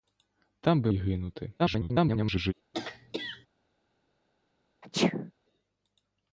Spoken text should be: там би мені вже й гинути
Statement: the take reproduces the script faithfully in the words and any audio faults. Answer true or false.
false